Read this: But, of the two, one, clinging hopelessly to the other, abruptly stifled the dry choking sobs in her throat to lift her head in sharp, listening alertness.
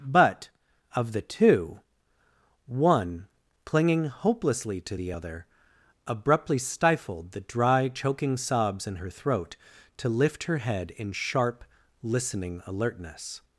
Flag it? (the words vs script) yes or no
no